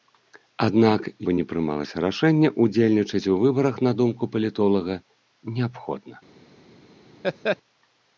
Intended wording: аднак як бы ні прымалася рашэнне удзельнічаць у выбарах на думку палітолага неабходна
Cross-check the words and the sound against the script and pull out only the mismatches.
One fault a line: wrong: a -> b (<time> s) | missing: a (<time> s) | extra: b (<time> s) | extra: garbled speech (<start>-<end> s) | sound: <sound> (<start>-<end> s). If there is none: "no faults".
missing: як (1.0 s)
sound: laugh (7.2-7.6 s)